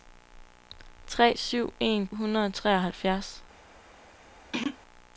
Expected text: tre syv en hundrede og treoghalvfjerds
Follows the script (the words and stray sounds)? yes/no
no